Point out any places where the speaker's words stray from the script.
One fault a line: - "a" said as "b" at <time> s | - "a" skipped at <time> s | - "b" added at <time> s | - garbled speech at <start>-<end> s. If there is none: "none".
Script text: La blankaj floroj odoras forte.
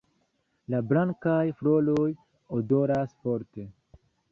none